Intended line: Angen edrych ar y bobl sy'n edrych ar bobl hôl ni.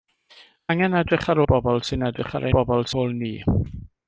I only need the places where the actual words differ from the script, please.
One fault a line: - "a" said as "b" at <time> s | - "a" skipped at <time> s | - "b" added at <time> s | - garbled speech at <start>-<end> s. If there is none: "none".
none